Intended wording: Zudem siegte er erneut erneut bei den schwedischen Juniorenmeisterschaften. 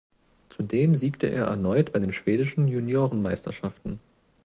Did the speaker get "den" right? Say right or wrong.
right